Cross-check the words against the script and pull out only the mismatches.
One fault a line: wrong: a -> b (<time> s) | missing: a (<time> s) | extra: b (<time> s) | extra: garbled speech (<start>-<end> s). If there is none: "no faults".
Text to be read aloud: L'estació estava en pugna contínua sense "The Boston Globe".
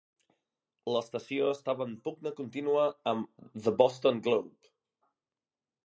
wrong: sense -> amb (3.1 s)